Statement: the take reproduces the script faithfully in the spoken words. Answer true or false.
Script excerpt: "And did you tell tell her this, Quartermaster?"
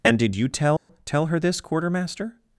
true